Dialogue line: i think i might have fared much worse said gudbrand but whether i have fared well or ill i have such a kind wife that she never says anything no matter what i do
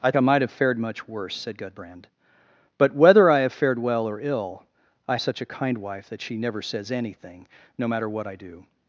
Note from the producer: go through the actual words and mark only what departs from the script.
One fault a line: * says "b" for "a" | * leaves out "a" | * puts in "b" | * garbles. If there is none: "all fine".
* leaves out "think"
* leaves out "have"